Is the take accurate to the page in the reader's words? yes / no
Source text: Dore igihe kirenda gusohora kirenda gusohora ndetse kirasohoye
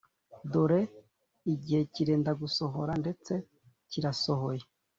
no